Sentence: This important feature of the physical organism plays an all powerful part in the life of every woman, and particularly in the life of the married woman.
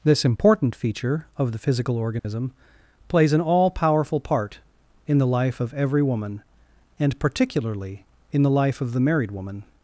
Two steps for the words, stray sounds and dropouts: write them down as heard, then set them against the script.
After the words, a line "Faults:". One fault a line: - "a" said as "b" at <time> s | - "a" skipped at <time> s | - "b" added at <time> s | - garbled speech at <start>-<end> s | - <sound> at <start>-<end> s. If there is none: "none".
This important feature of the physical organism plays an all powerful part in the life of every woman, and particularly in the life of the married woman.
Faults:
- dropout at 2.2-2.2 s